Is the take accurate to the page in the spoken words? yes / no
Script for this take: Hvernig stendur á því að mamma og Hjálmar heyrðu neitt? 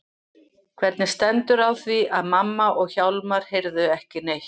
no